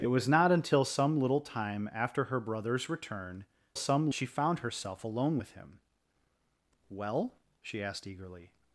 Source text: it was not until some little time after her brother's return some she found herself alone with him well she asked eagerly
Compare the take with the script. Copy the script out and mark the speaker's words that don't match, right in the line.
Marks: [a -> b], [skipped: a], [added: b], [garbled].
it was not until some little time after her brother's return some she found herself alone with him well she asked eagerly